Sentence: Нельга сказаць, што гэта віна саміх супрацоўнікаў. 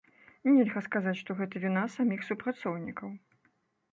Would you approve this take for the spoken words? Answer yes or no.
yes